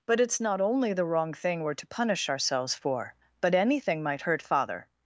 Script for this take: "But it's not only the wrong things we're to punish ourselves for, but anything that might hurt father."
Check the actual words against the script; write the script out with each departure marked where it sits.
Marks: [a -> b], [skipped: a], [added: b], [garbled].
"But it's not only the wrong [things -> thing] we're to punish ourselves for, but anything [skipped: that] might hurt father."